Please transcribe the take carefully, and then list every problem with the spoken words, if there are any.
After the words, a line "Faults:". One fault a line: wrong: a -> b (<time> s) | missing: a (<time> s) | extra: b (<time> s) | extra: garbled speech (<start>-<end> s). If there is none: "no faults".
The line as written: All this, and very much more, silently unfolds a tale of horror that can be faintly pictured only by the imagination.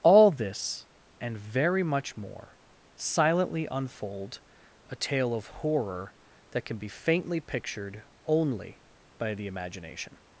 All this, and very much more, silently unfold a tale of horror that can be faintly pictured only by the imagination.
Faults:
wrong: unfolds -> unfold (3.7 s)